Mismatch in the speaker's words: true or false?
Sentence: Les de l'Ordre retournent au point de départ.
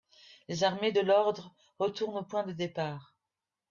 true